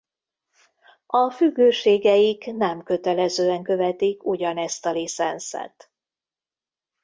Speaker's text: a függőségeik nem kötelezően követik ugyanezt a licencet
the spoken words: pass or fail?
pass